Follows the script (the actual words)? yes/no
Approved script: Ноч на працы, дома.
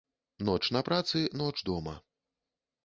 no